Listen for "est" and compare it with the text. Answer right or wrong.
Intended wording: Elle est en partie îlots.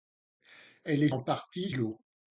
right